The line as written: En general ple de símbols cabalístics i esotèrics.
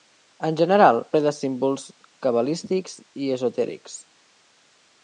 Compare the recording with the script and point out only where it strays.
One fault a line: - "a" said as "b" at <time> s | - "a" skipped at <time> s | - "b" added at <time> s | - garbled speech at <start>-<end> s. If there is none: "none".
none